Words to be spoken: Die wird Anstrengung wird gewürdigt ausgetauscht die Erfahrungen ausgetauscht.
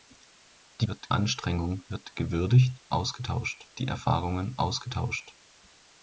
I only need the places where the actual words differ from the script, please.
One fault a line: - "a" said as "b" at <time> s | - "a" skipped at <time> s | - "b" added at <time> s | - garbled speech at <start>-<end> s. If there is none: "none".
none